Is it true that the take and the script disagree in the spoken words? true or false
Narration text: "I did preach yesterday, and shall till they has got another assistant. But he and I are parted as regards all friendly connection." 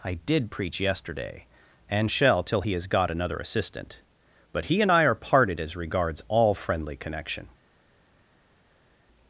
true